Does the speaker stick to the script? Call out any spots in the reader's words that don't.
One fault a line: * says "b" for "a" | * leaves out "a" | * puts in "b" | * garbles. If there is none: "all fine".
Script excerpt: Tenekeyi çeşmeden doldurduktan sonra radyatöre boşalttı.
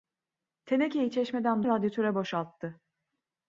* leaves out "doldurduktan sonra"